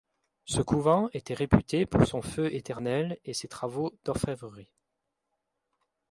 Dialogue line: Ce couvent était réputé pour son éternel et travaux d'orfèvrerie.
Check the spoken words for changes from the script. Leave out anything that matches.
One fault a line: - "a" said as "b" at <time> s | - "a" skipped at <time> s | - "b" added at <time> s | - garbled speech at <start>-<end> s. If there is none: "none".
- "feu" added at 2.2 s
- "ses" added at 3.4 s